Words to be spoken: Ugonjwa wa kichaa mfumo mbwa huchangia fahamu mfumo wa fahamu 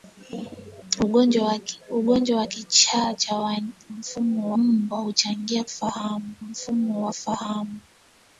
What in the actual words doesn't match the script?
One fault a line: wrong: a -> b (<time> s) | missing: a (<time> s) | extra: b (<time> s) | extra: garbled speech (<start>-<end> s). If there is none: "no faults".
no faults